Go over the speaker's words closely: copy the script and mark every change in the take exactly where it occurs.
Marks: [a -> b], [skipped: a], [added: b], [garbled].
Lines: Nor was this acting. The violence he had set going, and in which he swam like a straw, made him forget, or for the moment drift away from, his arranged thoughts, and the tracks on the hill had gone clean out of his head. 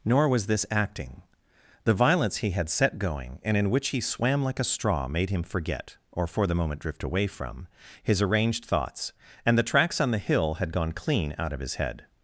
Nor was this acting. The violence he had set going, and in which he swam like a straw, made him forget, or for the moment drift away from, his arranged thoughts, and the tracks on the hill had gone clean out of his head.